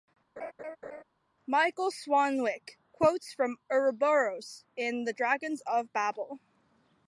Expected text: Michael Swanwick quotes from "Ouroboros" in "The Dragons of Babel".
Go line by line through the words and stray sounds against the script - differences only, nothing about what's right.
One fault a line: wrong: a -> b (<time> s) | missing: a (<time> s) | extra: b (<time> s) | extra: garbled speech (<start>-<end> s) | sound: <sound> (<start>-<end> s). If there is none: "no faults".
sound: laugh (0.4-1.0 s)